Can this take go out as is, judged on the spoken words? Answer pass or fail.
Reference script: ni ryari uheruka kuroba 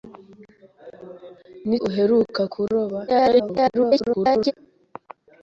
fail